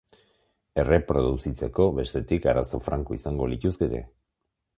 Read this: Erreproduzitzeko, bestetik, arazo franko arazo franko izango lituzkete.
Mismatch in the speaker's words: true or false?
true